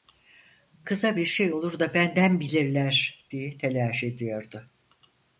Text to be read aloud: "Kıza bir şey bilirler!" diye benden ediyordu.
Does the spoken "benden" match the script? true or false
false